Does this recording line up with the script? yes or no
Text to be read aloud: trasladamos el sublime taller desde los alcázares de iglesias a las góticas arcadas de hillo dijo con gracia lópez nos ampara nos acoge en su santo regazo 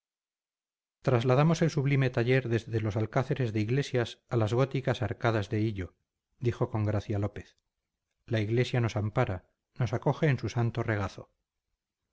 no